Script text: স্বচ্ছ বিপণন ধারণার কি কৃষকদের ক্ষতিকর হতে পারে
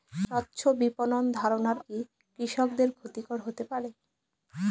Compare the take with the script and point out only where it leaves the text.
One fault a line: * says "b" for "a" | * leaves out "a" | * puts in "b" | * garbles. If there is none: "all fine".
all fine